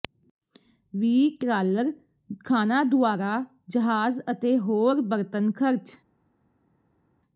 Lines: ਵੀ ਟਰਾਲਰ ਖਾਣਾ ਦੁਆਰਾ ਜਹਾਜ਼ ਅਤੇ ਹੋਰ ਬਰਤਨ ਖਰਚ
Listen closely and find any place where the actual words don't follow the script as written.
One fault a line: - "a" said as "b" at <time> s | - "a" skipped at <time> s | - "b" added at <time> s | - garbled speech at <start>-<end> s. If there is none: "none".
none